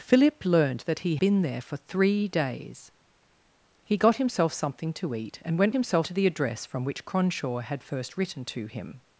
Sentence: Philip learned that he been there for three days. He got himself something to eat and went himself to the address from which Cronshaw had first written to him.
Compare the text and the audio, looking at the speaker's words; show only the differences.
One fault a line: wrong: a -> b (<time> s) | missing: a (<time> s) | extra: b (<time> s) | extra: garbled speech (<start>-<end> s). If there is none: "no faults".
no faults